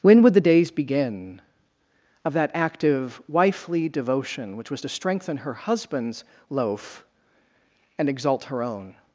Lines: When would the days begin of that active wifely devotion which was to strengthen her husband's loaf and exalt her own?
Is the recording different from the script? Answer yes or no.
no